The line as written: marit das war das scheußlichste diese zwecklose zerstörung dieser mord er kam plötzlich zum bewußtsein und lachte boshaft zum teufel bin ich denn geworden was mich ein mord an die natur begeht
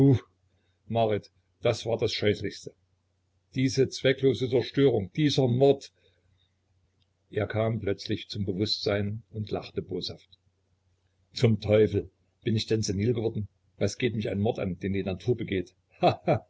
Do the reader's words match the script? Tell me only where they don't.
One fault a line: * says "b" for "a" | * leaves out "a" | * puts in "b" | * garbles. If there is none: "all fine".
* puts in "senil"
* puts in "geht"
* puts in "den"